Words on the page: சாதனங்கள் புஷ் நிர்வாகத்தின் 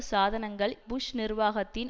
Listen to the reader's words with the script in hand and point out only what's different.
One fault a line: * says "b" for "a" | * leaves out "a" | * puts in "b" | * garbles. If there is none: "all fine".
all fine